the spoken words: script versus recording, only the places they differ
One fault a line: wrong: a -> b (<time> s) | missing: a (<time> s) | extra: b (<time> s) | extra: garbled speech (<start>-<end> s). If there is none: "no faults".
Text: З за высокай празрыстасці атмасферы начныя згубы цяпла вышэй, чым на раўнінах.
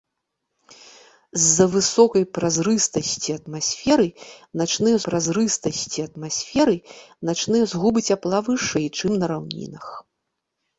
extra: празрыстасці атмасферы начныя (5.1 s)